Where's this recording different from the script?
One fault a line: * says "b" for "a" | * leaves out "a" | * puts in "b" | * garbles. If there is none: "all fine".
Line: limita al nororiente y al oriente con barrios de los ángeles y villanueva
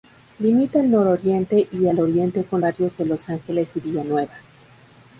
all fine